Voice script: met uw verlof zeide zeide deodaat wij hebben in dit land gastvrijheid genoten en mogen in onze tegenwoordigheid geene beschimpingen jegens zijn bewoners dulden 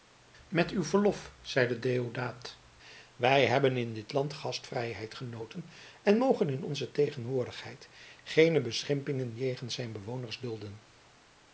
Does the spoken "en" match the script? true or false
true